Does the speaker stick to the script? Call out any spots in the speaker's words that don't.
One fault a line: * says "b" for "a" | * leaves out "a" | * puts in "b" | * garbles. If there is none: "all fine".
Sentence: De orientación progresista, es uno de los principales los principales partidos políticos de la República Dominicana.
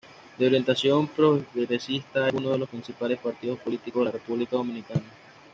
* leaves out "los principales"